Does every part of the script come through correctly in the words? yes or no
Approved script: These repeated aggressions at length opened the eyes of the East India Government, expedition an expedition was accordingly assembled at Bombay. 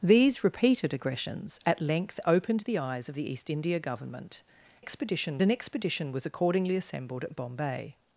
yes